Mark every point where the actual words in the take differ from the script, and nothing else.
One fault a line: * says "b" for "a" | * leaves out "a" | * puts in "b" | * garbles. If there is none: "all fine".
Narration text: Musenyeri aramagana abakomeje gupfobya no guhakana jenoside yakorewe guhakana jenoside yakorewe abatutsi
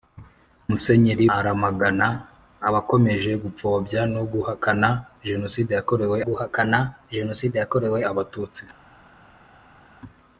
all fine